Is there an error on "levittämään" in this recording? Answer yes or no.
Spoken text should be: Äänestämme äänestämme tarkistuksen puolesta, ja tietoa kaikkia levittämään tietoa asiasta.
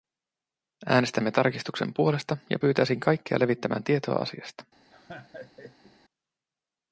no